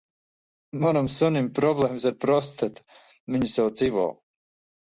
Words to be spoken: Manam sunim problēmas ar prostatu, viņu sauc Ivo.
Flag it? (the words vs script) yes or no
no